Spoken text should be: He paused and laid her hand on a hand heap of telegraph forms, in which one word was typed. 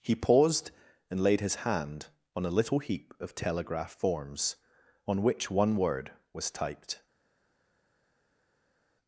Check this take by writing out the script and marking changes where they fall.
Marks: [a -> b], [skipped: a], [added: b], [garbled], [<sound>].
He paused and laid [her -> his] hand on a [hand -> little] heap of telegraph forms, [in -> on] which one word was typed.